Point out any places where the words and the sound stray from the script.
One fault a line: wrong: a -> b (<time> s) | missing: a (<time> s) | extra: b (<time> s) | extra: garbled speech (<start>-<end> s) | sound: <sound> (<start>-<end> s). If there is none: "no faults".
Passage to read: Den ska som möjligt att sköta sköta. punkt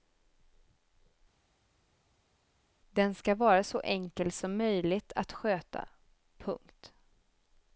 extra: vara så enkel (3.3 s)
missing: sköta (5.9 s)